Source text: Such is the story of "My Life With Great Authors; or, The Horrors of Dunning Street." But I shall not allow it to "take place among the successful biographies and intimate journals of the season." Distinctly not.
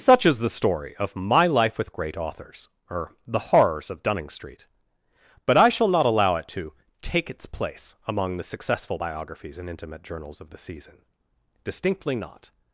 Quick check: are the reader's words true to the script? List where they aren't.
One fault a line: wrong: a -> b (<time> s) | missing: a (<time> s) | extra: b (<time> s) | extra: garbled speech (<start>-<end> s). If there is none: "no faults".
extra: its (7.3 s)